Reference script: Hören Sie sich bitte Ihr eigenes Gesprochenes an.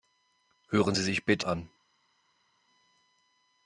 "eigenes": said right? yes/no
no